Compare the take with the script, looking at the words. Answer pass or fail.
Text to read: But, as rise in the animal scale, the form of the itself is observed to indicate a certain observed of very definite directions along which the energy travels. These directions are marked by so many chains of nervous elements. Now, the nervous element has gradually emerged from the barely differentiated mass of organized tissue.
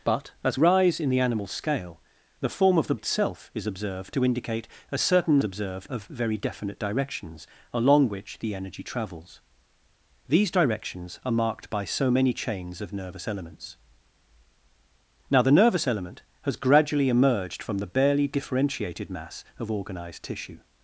pass